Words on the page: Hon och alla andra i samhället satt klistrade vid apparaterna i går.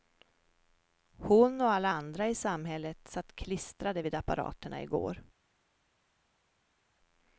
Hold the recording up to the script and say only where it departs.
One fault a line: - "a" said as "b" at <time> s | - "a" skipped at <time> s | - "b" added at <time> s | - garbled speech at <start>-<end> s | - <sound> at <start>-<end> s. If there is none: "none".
none